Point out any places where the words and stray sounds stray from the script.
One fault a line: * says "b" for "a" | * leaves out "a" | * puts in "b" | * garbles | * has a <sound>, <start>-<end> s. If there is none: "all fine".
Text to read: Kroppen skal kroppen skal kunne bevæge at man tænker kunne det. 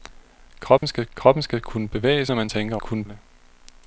* has a dropout, 0.8-0.8 s